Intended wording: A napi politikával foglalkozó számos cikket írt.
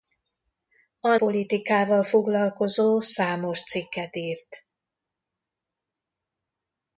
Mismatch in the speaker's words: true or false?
true